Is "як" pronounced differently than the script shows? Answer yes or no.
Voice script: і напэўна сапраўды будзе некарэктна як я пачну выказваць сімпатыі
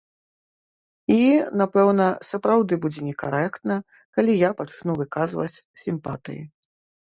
yes